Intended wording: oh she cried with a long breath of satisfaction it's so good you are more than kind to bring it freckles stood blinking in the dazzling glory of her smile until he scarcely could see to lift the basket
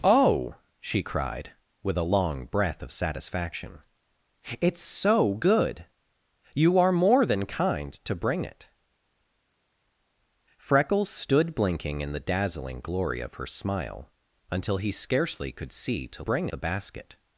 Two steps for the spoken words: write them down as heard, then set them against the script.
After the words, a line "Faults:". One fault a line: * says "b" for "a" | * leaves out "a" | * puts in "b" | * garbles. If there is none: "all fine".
oh she cried with a long breath of satisfaction it's so good you are more than kind to bring it freckles stood blinking in the dazzling glory of her smile until he scarcely could see to bring the basket
Faults:
* says "bring" for "lift"